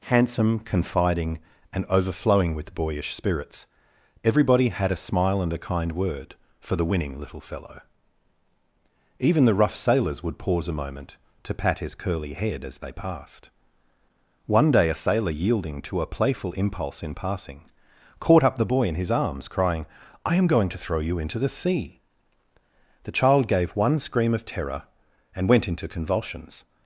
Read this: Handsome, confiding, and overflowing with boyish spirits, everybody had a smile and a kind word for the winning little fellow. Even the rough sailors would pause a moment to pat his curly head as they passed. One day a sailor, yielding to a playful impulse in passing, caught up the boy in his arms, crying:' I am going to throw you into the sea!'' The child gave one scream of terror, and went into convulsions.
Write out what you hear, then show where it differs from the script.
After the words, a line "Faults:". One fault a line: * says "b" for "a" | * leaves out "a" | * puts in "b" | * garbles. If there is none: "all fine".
Handsome, confiding, and overflowing with boyish spirits, everybody had a smile and a kind word for the winning little fellow. Even the rough sailors would pause a moment to pat his curly head as they passed. One day a sailor, yielding to a playful impulse in passing, caught up the boy in his arms, crying:' I am going to throw you into the sea!'' The child gave one scream of terror, and went into convulsions.
Faults:
all fine